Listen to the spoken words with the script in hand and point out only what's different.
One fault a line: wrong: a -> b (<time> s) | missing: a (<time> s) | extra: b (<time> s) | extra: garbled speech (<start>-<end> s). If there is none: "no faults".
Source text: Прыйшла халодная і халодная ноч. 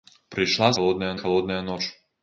no faults